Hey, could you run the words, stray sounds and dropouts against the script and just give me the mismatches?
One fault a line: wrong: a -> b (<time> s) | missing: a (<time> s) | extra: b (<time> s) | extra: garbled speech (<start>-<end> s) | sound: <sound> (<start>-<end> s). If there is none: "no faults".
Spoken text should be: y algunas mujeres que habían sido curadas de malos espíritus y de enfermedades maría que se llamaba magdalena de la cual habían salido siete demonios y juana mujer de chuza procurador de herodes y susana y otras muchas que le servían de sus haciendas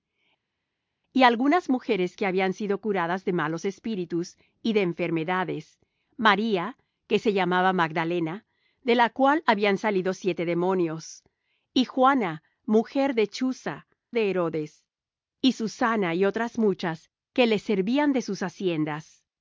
missing: procurador (13.9 s)